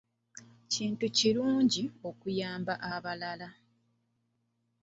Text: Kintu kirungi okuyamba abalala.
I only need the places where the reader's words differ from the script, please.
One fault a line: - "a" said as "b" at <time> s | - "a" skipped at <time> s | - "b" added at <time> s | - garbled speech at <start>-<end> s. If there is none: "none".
none